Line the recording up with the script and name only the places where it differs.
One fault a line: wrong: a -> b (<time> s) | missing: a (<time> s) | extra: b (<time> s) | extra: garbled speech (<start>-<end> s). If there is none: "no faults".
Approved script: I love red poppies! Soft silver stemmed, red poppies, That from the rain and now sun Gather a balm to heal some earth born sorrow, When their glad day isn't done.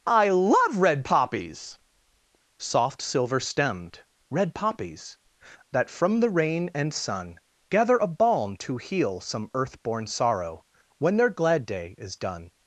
missing: now (6.9 s)
wrong: isn't -> is (12.0 s)